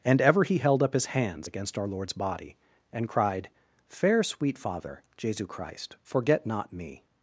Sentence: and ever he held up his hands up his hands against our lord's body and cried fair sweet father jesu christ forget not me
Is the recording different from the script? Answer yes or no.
yes